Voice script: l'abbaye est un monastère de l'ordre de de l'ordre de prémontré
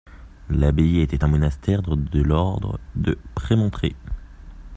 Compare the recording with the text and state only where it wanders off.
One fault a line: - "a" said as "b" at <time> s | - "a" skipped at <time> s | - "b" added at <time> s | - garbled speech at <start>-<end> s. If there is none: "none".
- "est" said as "était" at 1.0 s
- "de l'ordre de" skipped at 3.2 s